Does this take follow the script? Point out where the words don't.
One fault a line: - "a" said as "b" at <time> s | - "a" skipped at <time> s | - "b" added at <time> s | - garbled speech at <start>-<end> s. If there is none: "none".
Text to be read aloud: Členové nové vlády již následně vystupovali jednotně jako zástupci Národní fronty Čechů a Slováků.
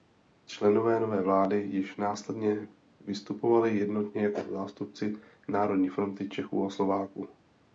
none